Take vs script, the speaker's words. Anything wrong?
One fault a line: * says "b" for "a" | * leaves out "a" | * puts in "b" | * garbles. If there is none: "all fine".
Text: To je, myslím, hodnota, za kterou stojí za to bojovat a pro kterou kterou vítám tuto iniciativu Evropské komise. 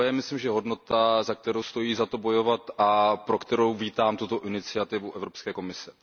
* leaves out "kterou"